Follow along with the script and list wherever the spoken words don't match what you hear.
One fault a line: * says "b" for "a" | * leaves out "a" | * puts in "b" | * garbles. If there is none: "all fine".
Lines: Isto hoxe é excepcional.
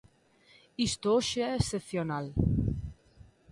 all fine